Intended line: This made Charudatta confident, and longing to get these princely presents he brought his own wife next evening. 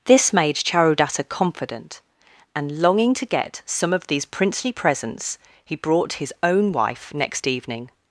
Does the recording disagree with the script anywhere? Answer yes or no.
yes